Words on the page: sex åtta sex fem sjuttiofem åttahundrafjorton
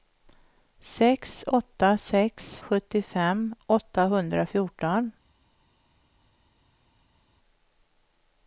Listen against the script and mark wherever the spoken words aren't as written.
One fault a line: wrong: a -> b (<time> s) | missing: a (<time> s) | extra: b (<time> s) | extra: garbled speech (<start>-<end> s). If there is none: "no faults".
missing: fem (2.6 s)